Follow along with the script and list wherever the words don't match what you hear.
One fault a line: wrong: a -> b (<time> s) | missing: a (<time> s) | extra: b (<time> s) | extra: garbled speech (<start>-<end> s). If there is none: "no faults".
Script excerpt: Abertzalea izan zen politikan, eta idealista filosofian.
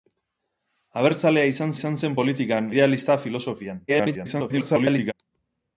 extra: izan (1.7 s)
missing: eta (2.7 s)
extra: garbled speech (3.9-5.1 s)